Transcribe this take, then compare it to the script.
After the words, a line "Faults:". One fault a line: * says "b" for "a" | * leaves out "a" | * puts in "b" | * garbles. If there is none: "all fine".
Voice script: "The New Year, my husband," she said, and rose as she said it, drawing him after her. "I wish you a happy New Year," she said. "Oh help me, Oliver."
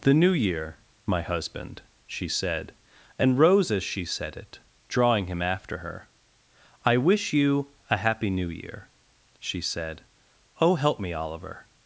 "The New Year, my husband," she said, and rose as she said it, drawing him after her. "I wish you a happy New Year," she said. "Oh help me, Oliver."
Faults:
all fine